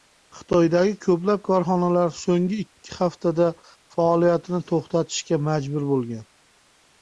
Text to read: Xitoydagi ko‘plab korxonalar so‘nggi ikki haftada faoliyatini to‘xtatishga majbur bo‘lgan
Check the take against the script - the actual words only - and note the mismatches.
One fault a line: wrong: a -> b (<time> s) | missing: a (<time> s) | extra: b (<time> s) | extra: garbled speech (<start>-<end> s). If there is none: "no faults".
no faults